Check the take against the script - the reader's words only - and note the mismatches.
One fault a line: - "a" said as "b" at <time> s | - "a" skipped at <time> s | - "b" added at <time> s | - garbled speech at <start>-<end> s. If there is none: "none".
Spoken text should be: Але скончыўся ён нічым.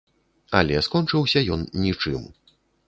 none